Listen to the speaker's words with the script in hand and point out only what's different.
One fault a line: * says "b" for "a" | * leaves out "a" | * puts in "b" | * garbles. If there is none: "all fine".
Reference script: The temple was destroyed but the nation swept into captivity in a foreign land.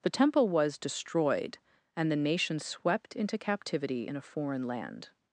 * says "and" for "but"